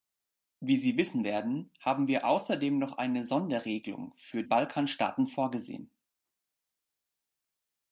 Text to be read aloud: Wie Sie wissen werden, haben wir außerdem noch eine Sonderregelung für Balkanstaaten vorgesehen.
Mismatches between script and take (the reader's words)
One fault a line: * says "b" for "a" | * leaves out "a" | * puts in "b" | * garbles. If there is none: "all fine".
all fine